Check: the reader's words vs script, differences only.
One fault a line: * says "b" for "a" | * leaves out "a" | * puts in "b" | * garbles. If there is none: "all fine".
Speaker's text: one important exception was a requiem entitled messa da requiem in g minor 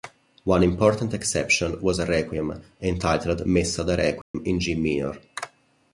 all fine